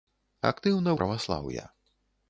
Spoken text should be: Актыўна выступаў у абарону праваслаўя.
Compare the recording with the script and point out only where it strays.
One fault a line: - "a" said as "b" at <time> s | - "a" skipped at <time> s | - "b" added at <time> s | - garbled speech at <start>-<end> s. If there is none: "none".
- "выступаў у абарону" skipped at 0.9 s